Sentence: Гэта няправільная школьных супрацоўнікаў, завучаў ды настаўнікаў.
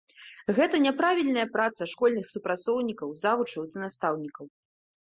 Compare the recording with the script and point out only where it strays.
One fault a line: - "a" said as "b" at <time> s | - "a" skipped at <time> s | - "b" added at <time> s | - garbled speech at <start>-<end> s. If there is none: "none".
- "праца" added at 1.6 s